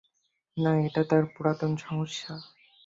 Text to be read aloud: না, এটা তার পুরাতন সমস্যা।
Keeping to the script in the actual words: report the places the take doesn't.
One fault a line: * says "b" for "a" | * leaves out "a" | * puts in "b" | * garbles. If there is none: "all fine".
all fine